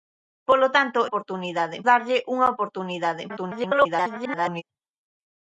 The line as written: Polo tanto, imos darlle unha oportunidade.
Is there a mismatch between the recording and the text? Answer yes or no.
yes